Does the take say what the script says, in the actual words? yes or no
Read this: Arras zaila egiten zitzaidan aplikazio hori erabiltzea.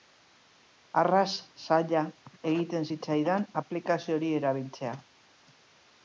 yes